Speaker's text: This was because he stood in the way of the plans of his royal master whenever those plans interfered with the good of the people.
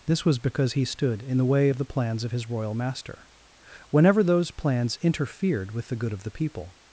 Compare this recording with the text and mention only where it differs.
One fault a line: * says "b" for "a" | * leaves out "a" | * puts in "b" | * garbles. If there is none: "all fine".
all fine